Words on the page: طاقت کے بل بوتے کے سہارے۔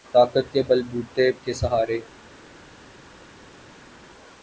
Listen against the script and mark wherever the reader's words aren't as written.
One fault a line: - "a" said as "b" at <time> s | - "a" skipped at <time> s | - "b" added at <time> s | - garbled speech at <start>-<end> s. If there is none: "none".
none